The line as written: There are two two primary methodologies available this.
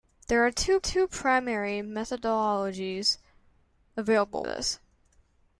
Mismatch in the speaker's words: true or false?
false